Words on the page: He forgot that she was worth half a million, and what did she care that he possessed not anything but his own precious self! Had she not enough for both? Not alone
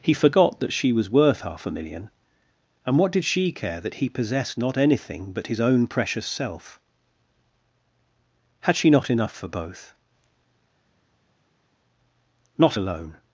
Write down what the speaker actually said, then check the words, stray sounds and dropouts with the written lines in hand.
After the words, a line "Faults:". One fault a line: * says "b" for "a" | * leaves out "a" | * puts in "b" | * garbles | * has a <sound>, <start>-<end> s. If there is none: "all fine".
He forgot that she was worth half a million, and what did she care that he possessed not anything but his own precious self! Had she not enough for both? Not alone
Faults:
all fine